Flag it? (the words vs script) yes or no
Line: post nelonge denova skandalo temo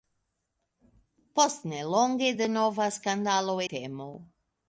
no